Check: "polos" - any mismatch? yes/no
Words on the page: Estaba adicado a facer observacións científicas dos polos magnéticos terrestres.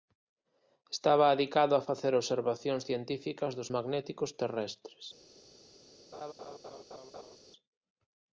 yes